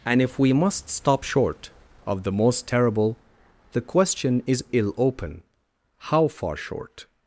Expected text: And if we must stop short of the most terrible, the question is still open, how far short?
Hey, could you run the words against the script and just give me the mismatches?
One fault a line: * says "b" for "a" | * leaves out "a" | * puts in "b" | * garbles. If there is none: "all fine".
* says "ill" for "still"